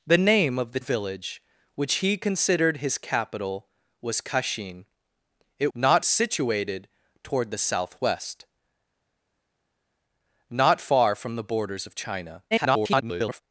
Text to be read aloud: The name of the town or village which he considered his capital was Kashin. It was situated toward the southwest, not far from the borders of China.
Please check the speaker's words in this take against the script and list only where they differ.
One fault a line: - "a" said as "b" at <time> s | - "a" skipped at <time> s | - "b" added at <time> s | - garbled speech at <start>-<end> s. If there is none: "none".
- "town or" skipped at 0.8 s
- "was" said as "not" at 5.7 s
- garbled speech at 12.5-13.4 s